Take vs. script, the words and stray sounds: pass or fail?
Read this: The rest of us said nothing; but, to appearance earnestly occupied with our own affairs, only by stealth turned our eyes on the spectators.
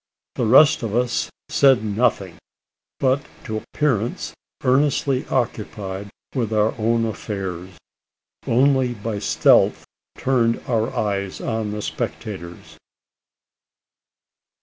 pass